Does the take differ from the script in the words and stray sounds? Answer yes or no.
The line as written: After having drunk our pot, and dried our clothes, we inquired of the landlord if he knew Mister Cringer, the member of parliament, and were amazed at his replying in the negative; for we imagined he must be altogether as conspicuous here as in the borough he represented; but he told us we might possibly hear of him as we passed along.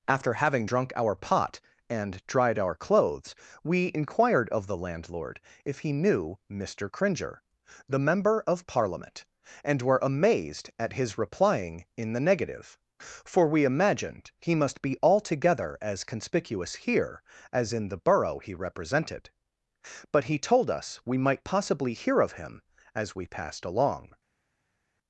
no